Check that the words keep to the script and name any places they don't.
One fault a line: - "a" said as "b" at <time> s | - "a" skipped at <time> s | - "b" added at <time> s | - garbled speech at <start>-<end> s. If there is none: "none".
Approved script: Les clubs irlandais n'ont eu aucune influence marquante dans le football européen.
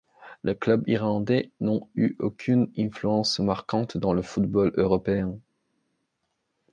none